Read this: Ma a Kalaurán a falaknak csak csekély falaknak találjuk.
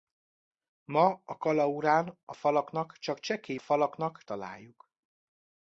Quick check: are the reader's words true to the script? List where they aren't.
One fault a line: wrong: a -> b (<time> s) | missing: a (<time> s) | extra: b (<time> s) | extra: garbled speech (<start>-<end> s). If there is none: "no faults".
no faults